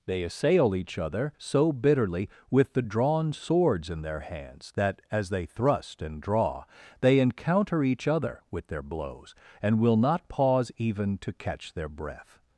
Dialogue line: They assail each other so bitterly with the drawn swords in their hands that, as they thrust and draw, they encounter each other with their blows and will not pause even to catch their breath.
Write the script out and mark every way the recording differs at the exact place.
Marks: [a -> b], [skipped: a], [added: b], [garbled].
They assail each other so bitterly with the drawn swords in their hands that, as they thrust and draw, they encounter each other with their blows and will not pause even to catch their breath.